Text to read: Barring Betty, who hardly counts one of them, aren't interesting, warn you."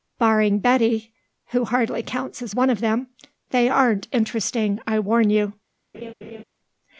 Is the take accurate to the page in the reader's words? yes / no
no